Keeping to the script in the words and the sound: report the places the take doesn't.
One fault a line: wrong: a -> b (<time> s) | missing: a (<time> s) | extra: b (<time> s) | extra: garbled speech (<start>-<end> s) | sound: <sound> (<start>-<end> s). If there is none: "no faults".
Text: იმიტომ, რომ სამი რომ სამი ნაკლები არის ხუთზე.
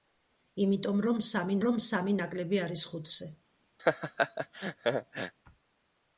sound: laugh (3.8-5.3 s)